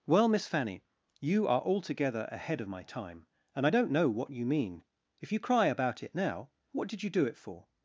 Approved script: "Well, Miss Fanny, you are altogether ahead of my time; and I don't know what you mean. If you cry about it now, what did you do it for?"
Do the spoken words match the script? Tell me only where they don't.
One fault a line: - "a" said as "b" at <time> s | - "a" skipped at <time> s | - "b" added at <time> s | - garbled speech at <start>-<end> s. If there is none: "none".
none